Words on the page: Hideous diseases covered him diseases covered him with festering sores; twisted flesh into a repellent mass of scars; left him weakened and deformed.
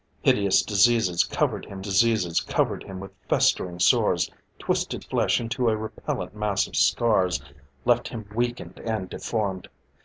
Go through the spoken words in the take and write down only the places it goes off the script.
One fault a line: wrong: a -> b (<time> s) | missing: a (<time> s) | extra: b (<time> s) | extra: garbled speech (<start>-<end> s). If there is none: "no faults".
no faults